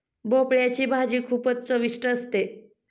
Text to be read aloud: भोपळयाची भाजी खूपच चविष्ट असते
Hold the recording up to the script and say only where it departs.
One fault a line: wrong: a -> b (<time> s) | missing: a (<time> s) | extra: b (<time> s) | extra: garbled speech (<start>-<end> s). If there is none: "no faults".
no faults